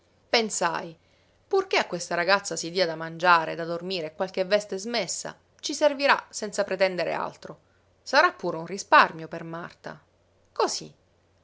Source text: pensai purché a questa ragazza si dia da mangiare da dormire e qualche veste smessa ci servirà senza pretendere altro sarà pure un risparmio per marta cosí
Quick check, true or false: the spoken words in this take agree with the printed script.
true